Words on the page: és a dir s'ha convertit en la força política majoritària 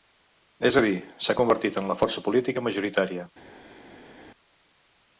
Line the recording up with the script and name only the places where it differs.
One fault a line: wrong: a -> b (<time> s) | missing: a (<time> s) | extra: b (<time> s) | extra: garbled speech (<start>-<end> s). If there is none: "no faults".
no faults